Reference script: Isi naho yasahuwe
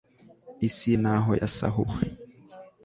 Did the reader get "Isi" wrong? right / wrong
right